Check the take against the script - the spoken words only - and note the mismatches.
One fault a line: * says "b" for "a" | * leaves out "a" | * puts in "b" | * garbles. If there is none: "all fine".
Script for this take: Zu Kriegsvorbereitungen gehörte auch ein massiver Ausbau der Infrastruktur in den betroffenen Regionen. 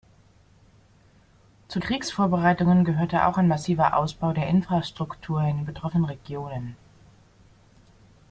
all fine